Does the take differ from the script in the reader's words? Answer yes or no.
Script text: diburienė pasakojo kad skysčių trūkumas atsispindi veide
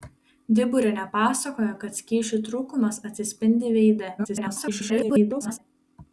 yes